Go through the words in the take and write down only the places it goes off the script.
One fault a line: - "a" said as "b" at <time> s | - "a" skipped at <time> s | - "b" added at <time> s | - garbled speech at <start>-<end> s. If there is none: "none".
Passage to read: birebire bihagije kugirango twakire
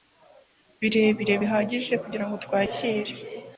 none